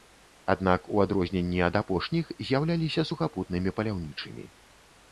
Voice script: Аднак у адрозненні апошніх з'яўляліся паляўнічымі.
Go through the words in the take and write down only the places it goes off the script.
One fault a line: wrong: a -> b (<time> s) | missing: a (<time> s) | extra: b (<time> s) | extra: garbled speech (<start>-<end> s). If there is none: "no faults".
extra: ад (1.7 s)
extra: сухапутнымі (3.1 s)